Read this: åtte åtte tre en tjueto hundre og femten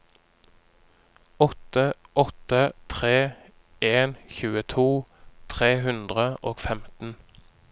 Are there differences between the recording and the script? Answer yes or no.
yes